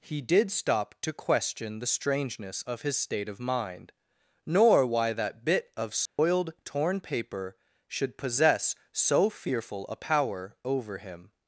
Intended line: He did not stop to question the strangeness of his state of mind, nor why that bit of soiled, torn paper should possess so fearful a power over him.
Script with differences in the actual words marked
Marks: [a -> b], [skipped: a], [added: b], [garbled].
He did [skipped: not] stop to question the strangeness of his state of mind, nor why that bit of soiled, torn paper should possess so fearful a power over him.